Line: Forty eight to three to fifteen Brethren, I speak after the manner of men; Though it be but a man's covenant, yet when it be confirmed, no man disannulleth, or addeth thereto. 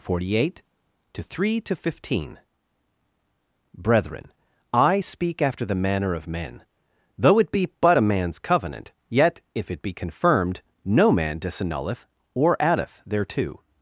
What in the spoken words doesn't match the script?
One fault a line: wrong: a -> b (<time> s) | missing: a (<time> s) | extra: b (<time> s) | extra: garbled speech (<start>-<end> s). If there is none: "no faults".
wrong: when -> if (9.6 s)